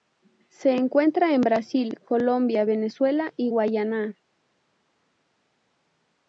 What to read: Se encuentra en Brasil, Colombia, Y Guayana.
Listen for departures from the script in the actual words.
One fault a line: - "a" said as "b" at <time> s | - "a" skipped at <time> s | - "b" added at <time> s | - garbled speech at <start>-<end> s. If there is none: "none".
- "Venezuela" added at 2.6 s